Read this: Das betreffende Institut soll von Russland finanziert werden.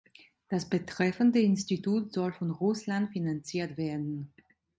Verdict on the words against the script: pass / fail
pass